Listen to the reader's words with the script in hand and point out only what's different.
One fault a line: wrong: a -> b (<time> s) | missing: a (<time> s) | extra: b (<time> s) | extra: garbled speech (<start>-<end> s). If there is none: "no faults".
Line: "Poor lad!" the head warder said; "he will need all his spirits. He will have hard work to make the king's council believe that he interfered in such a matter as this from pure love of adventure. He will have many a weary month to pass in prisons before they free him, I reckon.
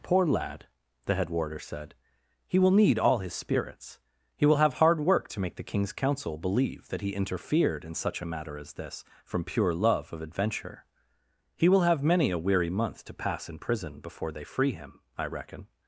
wrong: prisons -> prison (13.6 s)